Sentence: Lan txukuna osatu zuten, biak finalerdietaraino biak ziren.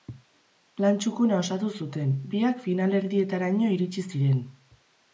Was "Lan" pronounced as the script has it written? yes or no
yes